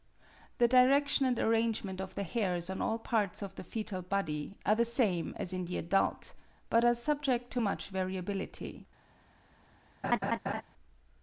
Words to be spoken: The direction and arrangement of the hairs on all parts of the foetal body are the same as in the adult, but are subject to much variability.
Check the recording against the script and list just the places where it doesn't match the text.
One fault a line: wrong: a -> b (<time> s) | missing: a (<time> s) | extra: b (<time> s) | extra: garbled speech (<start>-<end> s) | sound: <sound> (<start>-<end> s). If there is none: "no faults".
sound: laugh (10.0-10.6 s)